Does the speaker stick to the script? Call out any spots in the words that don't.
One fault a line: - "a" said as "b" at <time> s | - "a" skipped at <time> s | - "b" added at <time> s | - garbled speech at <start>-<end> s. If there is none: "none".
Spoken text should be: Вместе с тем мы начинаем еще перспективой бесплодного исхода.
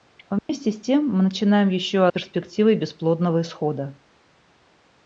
none